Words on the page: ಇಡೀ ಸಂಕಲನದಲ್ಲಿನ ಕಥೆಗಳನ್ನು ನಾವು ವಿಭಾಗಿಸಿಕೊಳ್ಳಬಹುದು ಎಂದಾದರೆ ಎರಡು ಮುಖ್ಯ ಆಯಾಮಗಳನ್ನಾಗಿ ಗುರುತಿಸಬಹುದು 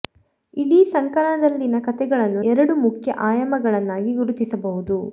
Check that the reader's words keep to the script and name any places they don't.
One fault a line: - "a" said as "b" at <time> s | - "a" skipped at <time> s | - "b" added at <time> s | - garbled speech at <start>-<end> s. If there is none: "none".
- "ನಾವು ವಿಭಾಗಿಸಿಕೊಳ್ಳಬಹುದು ಎಂದಾದರೆ" skipped at 2.4 s